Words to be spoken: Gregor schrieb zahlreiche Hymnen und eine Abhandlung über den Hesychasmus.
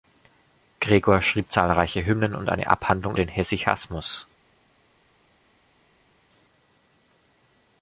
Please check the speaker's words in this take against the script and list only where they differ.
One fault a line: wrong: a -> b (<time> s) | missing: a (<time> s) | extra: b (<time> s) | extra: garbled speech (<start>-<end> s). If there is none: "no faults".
missing: über (3.1 s)